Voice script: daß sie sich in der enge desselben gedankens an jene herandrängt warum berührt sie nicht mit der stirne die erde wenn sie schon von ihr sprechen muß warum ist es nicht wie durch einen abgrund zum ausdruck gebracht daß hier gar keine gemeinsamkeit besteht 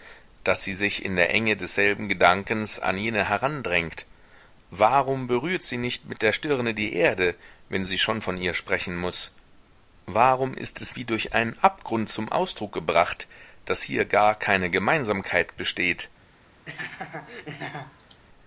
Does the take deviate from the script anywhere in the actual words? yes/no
yes